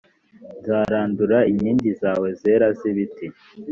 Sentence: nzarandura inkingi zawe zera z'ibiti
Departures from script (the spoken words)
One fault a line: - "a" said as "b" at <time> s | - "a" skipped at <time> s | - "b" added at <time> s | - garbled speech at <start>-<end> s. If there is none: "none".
none